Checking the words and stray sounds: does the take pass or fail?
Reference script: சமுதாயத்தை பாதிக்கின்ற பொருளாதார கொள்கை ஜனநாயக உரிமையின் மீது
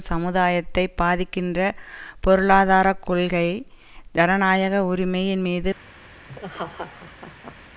fail